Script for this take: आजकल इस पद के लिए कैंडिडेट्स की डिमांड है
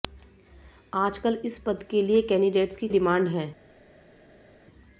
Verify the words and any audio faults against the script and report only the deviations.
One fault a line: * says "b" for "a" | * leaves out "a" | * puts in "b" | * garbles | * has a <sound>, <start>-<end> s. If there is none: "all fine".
all fine